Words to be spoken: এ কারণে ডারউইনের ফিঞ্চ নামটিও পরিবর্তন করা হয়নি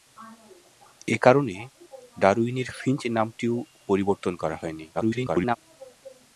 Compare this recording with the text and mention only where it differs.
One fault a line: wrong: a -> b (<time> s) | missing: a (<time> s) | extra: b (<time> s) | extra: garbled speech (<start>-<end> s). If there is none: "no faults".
extra: garbled speech (4.9-5.6 s)